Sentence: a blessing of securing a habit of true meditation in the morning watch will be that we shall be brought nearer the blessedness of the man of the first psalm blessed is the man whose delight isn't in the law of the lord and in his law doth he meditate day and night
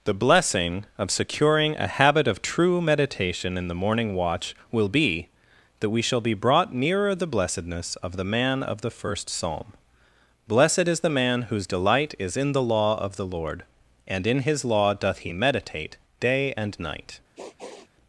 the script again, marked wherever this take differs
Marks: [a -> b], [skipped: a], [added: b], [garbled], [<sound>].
[a -> the] blessing of securing a habit of true meditation in the morning watch will be that we shall be brought nearer the blessedness of the man of the first psalm blessed is the man whose delight [isn't -> is] in the law of the lord and in his law doth he meditate day and night [sniff]